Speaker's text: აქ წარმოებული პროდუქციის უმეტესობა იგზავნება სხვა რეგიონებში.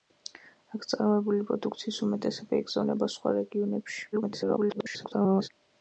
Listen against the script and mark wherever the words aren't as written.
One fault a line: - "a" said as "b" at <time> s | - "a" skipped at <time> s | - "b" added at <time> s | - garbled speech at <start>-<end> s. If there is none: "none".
- garbled speech at 4.1-5.5 s